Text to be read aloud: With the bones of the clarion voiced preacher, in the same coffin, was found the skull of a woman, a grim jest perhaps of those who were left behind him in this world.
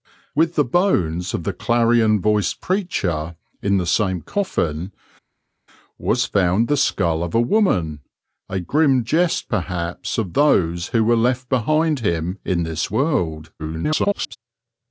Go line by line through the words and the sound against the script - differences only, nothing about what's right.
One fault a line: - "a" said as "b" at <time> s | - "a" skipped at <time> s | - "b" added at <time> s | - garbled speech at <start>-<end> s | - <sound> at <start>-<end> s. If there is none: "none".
- garbled speech at 13.6-14.4 s